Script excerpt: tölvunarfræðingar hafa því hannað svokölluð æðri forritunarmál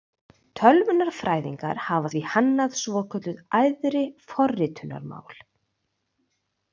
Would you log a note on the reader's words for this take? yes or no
no